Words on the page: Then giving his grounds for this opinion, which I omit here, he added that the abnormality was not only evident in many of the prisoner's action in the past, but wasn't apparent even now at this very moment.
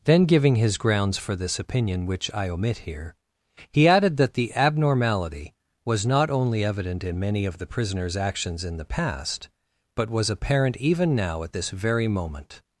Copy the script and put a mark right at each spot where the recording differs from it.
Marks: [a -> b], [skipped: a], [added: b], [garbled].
Then giving his grounds for this opinion, which I omit here, he added that the abnormality was not only evident in many of the prisoner's [action -> actions] in the past, but [wasn't -> was] apparent even now at this very moment.